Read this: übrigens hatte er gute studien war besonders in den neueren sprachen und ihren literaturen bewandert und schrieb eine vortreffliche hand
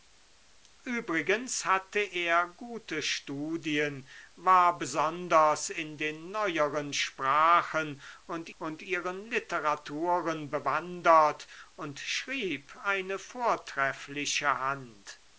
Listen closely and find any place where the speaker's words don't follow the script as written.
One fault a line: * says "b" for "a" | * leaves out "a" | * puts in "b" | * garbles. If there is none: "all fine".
* puts in "und"